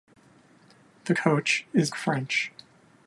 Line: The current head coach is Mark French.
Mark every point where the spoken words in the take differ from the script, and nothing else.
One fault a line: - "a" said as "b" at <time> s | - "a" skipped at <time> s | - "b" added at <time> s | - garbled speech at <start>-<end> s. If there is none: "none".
- "current head" skipped at 1.1 s
- "Mark" skipped at 1.9 s